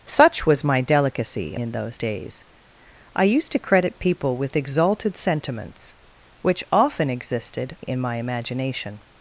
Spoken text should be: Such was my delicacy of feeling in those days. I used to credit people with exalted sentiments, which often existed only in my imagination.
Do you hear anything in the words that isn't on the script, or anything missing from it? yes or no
yes